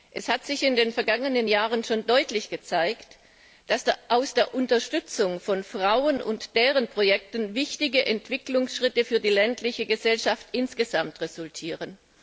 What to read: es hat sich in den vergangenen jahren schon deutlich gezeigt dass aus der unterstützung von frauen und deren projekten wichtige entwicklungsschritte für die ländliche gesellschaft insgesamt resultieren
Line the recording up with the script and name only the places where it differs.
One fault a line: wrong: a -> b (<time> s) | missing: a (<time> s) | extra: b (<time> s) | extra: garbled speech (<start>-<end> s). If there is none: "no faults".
no faults